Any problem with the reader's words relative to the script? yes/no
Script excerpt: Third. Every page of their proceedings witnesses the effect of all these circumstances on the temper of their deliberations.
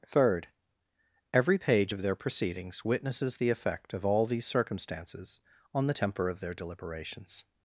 no